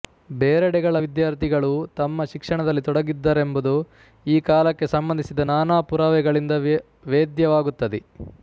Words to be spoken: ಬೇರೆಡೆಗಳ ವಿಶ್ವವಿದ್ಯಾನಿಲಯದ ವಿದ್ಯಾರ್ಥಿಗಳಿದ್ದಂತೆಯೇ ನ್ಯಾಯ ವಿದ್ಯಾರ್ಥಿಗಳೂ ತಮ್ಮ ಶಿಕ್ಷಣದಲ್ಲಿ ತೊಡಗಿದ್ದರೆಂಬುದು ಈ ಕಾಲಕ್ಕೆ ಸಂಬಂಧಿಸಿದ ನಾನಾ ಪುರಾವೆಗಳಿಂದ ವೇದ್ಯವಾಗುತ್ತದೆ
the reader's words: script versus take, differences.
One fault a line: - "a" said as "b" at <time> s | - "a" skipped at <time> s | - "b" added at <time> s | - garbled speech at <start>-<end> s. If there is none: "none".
- "ವಿಶ್ವವಿದ್ಯಾನಿಲಯದ ವಿದ್ಯಾರ್ಥಿಗಳಿದ್ದಂತೆಯೇ ನ್ಯಾಯ" skipped at 0.9 s